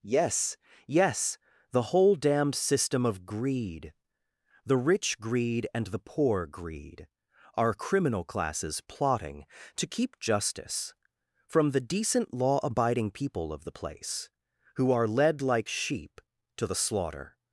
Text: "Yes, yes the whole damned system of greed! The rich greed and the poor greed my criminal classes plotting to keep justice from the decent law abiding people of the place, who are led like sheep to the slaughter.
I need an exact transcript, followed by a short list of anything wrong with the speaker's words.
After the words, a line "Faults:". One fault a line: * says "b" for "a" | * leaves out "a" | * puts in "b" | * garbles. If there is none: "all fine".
"Yes, yes the whole damned system of greed! The rich greed and the poor greed our criminal classes plotting to keep justice from the decent law abiding people of the place, who are led like sheep to the slaughter.
Faults:
* says "our" for "my"